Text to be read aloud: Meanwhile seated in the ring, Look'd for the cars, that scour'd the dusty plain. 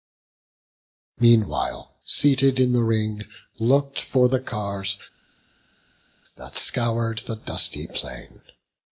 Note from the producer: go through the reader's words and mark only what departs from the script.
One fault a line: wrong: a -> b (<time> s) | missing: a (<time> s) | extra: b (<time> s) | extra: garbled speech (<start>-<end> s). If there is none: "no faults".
no faults